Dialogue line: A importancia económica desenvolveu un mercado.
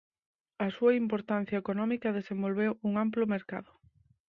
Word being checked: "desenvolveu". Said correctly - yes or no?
yes